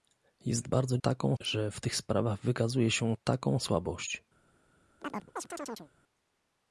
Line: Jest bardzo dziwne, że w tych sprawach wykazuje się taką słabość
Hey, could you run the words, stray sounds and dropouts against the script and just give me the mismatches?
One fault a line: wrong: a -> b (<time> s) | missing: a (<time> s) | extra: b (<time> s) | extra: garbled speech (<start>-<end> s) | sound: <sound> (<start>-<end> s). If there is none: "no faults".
wrong: dziwne -> taką (1.0 s)
sound: chirp (5.0-5.9 s)